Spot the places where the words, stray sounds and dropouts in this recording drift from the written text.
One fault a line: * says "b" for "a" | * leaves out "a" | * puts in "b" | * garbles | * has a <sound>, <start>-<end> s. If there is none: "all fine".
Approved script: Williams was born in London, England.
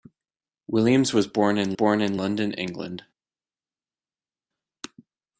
* puts in "born in"